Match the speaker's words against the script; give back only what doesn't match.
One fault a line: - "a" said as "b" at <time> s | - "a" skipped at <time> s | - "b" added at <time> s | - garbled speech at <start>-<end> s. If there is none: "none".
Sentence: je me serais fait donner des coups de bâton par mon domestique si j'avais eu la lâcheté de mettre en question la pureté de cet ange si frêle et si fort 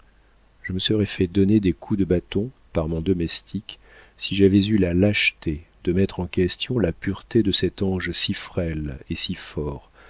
none